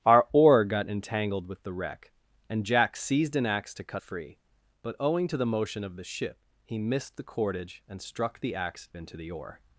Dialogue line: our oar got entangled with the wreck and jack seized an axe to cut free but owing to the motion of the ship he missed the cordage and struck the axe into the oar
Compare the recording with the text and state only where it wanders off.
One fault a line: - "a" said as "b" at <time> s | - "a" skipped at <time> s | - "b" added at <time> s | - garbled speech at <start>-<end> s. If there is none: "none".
none